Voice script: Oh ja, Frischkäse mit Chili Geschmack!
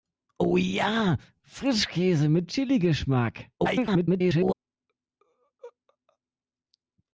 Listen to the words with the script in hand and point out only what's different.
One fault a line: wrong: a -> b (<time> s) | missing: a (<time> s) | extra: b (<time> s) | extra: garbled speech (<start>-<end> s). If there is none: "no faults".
extra: garbled speech (3.6-4.5 s)